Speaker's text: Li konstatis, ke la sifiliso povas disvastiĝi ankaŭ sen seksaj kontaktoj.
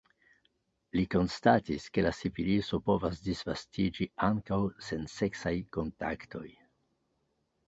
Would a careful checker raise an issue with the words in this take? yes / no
no